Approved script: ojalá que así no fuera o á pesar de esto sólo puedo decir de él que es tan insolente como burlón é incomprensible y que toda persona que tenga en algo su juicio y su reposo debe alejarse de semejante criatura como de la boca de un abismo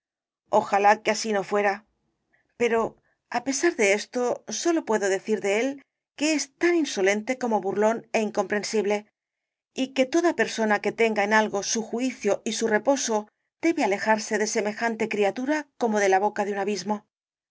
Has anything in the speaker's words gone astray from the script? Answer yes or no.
yes